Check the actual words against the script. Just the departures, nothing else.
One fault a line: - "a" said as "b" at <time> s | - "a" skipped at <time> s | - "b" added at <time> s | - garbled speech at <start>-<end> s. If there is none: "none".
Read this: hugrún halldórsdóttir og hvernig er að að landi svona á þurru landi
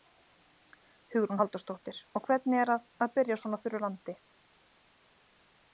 - "landi" said as "byrja" at 3.2 s